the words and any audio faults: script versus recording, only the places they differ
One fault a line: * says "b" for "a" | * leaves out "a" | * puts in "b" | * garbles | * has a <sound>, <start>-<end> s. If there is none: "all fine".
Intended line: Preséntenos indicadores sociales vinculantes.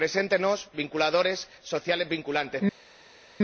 all fine